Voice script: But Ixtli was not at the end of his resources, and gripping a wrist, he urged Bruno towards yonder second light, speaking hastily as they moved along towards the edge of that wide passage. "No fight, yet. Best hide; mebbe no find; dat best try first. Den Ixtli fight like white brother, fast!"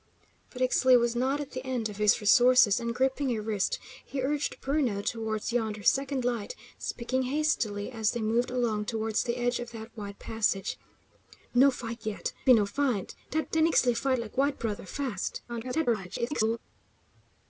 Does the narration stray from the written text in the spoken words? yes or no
yes